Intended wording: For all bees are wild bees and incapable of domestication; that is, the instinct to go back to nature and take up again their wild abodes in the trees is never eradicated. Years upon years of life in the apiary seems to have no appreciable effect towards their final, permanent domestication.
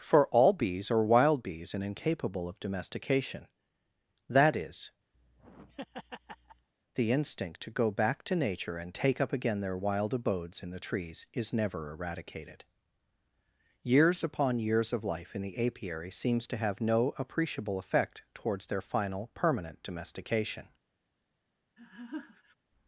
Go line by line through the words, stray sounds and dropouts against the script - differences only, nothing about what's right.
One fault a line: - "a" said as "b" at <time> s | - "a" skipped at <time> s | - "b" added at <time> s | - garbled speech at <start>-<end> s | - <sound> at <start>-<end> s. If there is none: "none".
- laugh at 5.1-6.7 s
- laugh at 21.8-22.6 s